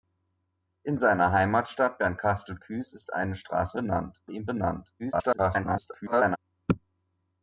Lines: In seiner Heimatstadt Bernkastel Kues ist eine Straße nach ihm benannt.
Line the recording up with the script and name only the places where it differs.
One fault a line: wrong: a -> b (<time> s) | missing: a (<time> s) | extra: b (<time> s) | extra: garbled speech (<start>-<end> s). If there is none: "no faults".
wrong: nach -> benannt (3.7 s)
extra: garbled speech (5.0-6.4 s)